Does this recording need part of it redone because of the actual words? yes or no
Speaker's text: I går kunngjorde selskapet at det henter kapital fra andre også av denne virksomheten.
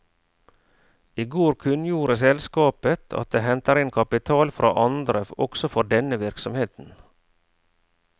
yes